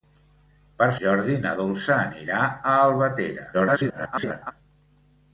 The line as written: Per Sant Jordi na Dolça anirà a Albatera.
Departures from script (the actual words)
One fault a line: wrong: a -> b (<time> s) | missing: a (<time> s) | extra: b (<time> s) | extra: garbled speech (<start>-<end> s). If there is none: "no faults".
missing: Sant (0.9 s)
extra: garbled speech (3.5-4.5 s)